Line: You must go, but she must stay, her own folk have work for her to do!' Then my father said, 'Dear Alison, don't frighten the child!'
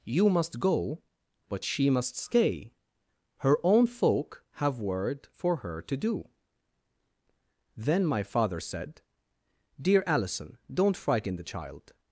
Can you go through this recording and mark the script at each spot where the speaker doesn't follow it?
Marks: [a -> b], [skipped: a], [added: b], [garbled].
You must go, but she must stay, her own folk have [work -> word] for her to do!' Then my father said, 'Dear Alison, don't frighten the child!'